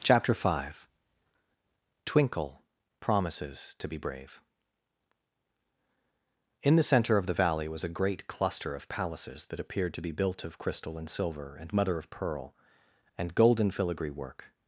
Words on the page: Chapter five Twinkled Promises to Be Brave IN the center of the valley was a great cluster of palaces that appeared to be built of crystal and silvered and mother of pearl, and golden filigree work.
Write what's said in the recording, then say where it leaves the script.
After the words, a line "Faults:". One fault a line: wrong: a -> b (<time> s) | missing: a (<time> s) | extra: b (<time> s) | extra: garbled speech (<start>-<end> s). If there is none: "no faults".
Chapter five Twinkle Promises to Be Brave IN the center of the valley was a great cluster of palaces that appeared to be built of crystal and silver and mother of pearl, and golden filigree work.
Faults:
wrong: Twinkled -> Twinkle (2.0 s)
wrong: silvered -> silver (11.1 s)